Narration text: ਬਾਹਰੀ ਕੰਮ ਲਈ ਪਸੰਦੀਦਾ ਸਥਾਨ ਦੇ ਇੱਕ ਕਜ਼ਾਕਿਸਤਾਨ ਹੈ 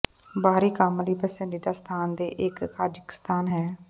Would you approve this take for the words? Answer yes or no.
yes